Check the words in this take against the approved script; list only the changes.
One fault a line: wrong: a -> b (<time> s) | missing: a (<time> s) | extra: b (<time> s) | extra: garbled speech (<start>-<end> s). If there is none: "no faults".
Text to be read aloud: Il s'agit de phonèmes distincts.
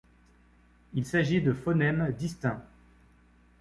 no faults